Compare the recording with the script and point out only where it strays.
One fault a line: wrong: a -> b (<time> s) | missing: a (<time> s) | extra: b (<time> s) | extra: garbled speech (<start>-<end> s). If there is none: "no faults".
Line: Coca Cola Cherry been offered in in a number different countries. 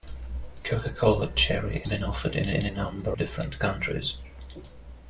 no faults